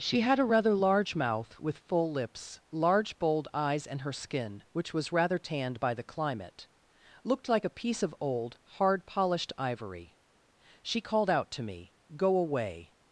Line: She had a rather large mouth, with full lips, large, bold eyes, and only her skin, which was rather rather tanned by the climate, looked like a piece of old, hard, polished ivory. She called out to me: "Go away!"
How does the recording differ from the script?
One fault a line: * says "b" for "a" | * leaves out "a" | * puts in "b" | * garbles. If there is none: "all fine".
* leaves out "only"
* leaves out "rather"